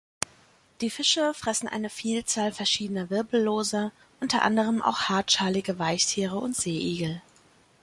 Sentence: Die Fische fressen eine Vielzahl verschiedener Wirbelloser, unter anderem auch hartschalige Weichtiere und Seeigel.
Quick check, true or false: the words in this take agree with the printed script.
true